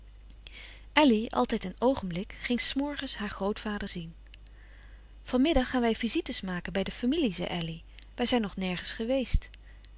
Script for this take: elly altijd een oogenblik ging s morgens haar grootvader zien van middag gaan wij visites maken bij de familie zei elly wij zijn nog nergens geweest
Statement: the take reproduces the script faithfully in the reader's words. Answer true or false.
true